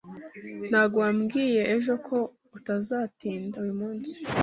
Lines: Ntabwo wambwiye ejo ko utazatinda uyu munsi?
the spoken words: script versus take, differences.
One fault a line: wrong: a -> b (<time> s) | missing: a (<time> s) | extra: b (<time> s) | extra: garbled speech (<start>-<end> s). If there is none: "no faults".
no faults